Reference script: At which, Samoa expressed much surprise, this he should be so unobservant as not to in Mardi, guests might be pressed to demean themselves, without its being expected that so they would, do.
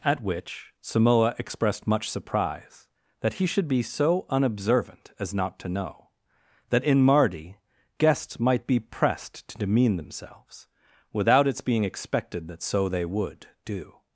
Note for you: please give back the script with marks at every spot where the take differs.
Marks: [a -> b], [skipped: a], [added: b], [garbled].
At which, Samoa expressed much surprise, [this -> that] he should be so unobservant as not to [added: know that] in Mardi, guests might be pressed to demean themselves, without its being expected that so they would, do.